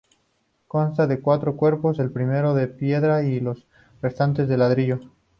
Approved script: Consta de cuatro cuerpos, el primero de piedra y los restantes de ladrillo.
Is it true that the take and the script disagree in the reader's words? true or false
false